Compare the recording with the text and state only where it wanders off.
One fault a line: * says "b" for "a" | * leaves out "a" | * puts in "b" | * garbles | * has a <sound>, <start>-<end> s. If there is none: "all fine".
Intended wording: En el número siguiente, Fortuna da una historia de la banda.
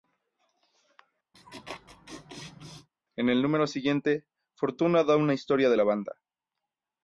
* has a laugh, 1.3-2.9 s